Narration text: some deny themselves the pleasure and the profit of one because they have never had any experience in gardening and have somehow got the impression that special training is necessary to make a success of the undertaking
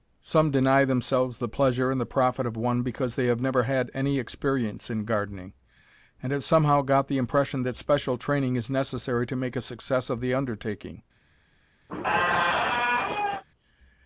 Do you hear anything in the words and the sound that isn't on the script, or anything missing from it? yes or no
yes